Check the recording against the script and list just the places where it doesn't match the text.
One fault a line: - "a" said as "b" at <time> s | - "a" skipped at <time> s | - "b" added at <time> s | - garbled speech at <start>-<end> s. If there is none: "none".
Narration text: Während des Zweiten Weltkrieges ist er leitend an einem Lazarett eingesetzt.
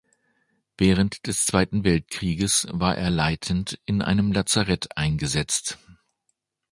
- "ist" said as "war" at 2.7 s
- "an" said as "in" at 3.9 s